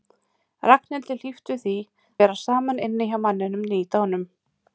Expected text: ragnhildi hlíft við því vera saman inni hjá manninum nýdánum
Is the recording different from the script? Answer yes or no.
no